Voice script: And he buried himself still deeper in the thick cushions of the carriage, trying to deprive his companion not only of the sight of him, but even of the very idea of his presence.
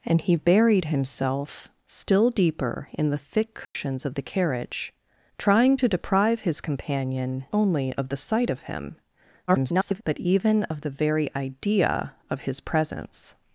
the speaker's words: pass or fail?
fail